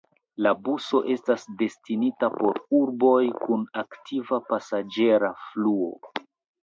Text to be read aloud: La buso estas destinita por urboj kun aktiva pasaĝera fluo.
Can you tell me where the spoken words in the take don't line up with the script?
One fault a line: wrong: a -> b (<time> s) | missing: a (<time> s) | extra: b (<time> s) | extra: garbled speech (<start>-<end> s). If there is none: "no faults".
no faults